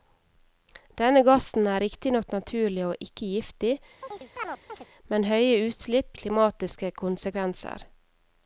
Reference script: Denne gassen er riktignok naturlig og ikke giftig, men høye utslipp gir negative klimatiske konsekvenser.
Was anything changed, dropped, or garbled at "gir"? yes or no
yes